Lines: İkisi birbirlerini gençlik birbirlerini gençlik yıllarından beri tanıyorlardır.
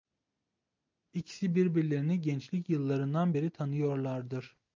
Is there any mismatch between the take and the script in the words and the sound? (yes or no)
yes